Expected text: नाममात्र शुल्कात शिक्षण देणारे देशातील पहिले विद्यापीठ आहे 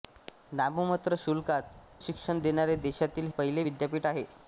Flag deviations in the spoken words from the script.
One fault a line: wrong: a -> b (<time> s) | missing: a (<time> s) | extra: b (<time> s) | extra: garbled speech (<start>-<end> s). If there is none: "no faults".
no faults